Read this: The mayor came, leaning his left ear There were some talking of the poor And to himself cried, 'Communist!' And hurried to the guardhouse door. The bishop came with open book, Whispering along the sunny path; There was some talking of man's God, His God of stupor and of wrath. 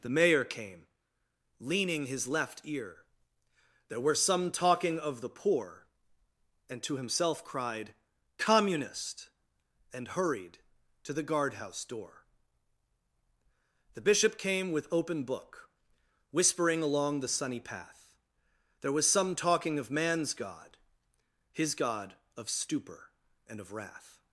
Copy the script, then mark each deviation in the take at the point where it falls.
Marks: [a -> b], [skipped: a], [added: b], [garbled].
The mayor came, leaning his left ear There were some talking of the poor And to himself cried, 'Communist!' And hurried to the guardhouse door. The bishop came with open book, Whispering along the sunny path; There was some talking of man's God, His God of stupor and of wrath.